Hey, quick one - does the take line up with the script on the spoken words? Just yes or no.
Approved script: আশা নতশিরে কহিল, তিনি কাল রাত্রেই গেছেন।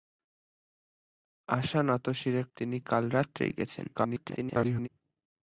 no